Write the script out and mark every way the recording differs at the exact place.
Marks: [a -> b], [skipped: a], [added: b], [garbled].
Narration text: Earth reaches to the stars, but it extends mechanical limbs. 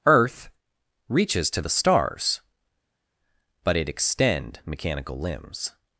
Earth reaches to the stars, but it [extends -> extend] mechanical limbs.